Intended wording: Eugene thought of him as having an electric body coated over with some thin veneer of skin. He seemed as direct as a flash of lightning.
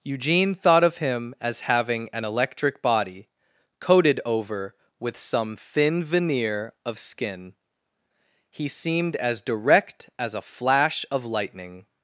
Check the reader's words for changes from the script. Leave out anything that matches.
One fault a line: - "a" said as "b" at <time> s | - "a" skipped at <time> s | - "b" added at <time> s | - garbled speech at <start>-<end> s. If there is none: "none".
none